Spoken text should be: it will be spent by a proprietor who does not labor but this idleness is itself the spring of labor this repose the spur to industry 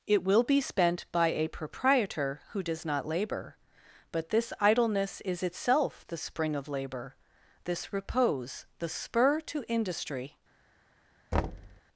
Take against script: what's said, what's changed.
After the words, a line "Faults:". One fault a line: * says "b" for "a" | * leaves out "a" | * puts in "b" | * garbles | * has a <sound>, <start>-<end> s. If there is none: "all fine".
it will be spent by a proprietor who does not labor but this idleness is itself the spring of labor this repose the spur to industry
Faults:
* has a thud, 11.3-11.8 s